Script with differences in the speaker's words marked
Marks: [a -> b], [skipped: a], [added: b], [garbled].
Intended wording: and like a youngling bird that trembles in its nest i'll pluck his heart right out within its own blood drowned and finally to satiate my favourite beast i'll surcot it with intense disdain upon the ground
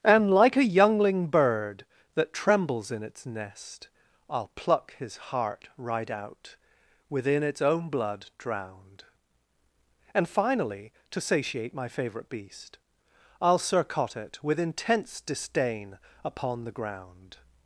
and like a youngling bird that trembles in its nest i'll pluck his heart right out within its own blood drowned and finally to satiate my favourite beast i'll surcot it with intense disdain upon the ground